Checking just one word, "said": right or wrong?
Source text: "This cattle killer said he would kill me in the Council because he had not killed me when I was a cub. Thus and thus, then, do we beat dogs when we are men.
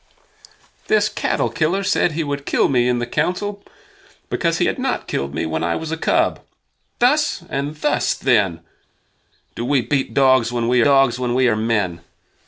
right